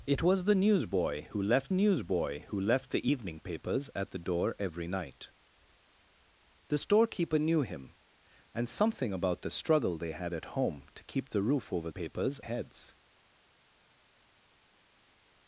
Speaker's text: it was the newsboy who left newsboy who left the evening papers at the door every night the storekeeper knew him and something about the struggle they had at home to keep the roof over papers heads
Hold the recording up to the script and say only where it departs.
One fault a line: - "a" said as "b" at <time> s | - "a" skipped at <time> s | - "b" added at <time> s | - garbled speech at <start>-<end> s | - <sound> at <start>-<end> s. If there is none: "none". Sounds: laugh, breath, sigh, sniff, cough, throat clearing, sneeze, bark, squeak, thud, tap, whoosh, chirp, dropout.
none